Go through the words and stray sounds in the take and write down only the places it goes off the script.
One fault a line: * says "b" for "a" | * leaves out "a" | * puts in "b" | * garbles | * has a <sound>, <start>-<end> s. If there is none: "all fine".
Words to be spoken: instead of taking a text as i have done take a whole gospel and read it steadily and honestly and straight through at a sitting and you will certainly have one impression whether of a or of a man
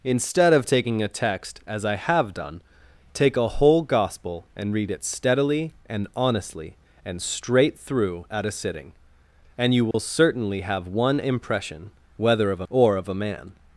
* has a dropout, 9.9-9.9 s